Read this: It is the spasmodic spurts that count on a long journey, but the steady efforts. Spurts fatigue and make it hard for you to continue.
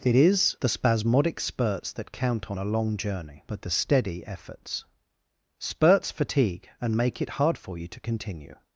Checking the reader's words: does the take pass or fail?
pass